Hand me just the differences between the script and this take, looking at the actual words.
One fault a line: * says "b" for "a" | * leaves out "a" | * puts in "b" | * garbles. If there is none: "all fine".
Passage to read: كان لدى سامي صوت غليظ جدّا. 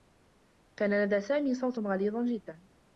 all fine